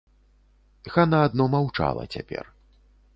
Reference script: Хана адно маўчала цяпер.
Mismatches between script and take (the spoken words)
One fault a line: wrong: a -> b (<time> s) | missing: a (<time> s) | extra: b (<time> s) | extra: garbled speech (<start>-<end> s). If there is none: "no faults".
no faults